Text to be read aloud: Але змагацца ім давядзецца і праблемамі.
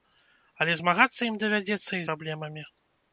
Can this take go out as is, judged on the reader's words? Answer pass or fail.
pass